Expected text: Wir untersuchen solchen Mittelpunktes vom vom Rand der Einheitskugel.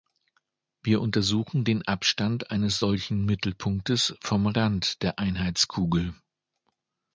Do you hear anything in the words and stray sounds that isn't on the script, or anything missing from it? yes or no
yes